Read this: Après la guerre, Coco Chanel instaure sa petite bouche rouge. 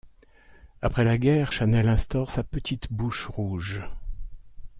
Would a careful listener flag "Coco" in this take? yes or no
yes